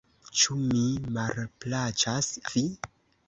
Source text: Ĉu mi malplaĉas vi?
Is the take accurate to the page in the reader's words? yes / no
yes